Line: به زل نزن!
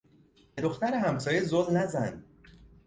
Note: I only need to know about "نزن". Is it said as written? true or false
true